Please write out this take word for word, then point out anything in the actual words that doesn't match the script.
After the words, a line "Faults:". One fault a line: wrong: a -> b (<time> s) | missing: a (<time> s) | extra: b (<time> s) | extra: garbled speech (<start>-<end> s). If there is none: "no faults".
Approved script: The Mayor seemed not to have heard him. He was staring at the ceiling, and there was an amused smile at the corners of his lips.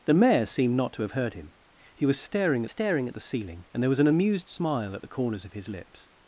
The Mayor seemed not to have heard him. He was staring staring at the ceiling, and there was an amused smile at the corners of his lips.
Faults:
extra: staring (2.7 s)